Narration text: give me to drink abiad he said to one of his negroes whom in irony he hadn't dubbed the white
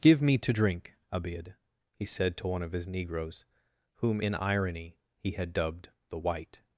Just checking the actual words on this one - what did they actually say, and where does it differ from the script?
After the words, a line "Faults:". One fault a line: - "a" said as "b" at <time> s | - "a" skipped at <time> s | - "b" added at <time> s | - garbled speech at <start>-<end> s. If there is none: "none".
give me to drink abiad he said to one of his negroes whom in irony he had dubbed the white
Faults:
- "hadn't" said as "had" at 5.3 s